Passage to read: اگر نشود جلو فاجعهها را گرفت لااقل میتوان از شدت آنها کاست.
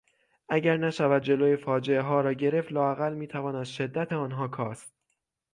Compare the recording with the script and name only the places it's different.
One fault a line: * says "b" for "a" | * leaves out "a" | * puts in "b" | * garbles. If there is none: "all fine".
all fine